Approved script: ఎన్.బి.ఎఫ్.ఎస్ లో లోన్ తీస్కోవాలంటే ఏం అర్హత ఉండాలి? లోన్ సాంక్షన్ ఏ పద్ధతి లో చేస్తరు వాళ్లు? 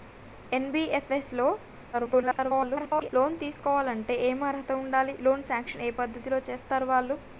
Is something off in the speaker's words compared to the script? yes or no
yes